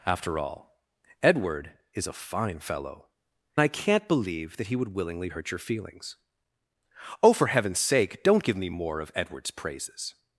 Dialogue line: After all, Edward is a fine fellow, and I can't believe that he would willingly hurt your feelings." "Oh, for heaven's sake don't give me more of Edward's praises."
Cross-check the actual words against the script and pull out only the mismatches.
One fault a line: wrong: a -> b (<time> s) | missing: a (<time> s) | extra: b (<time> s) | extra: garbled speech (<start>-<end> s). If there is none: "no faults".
missing: and (3.1 s)